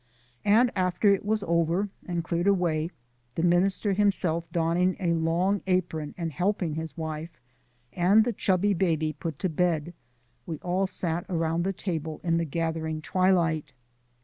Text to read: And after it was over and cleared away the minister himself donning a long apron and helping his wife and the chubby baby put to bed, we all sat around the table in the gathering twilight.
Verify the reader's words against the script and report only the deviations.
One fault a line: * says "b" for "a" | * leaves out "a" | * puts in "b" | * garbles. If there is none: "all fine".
all fine